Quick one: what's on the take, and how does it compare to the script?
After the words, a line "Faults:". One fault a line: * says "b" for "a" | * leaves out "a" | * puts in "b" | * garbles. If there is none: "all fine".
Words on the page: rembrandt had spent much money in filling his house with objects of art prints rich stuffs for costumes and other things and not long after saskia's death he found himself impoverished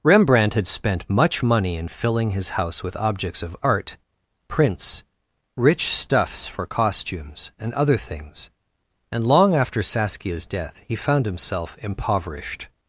rembrandt had spent much money in filling his house with objects of art prints rich stuffs for costumes and other things and long after saskia's death he found himself impoverished
Faults:
* leaves out "not"